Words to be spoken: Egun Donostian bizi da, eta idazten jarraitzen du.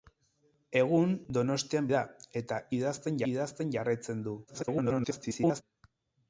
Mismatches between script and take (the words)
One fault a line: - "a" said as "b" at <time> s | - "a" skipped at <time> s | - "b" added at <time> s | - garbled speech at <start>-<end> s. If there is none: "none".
- "bizi" skipped at 1.9 s
- "idazten" added at 3.3 s
- garbled speech at 4.5-5.6 s